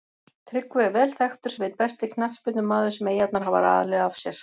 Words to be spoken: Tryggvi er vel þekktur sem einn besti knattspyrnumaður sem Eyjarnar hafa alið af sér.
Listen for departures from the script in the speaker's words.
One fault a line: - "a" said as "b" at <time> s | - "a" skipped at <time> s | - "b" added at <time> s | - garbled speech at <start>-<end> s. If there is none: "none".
none